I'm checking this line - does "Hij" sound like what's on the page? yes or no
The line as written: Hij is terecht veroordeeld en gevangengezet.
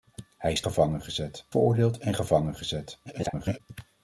yes